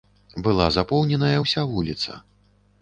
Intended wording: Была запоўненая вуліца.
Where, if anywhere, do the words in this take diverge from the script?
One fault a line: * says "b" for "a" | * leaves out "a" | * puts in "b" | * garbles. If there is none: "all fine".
* puts in "ўся"